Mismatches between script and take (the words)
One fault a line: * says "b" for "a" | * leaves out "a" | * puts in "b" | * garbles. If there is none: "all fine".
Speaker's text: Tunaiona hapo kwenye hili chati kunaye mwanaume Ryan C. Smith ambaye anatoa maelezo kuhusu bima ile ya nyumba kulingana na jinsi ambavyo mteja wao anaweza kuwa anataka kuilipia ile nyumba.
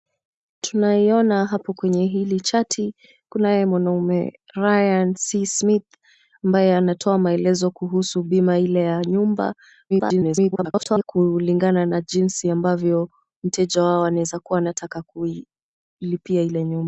* garbles